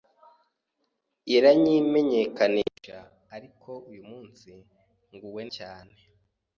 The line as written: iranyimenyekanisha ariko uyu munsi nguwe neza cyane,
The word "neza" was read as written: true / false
false